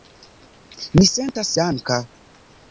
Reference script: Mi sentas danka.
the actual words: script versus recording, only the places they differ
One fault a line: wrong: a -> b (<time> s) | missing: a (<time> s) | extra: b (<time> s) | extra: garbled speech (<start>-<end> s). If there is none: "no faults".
no faults